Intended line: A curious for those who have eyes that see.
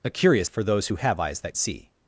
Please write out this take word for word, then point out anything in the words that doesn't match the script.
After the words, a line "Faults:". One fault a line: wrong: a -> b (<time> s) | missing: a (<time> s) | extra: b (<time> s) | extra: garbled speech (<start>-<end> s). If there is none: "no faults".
A curious for those who have eyes that see.
Faults:
no faults